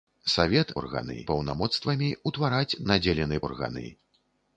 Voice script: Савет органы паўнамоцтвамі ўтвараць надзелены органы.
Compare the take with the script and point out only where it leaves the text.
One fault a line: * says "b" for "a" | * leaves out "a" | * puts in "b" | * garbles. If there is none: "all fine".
all fine